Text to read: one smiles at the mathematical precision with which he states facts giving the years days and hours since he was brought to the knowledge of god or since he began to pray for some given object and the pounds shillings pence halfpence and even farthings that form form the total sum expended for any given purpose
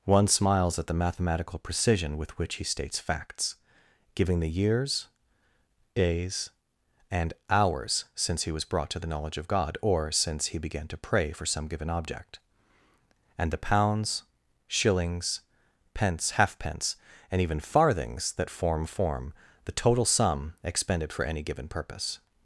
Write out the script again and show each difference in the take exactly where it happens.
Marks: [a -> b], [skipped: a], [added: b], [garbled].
one smiles at the mathematical precision with which he states facts giving the years days and hours since he was brought to the knowledge of god or since he began to pray for some given object and the pounds shillings pence halfpence and even farthings that form form the total sum expended for any given purpose